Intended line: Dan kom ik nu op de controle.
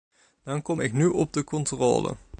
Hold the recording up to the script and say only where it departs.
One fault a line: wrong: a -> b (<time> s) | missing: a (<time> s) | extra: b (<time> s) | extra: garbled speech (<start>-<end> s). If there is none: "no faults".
no faults